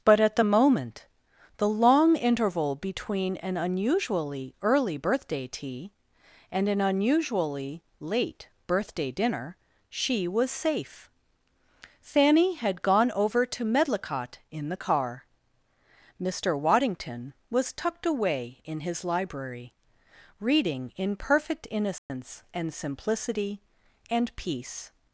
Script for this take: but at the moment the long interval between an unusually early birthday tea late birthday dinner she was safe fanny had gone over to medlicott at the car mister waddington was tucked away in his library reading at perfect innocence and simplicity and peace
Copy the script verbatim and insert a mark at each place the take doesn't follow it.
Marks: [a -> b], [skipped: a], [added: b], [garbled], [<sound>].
but at the moment the long interval between an unusually early birthday tea [added: and an unusually] late birthday dinner she was safe fanny had gone over to medlicott [at -> in] the car mister waddington was tucked away in his library reading [at -> in] perfect innocence [dropout] and simplicity and peace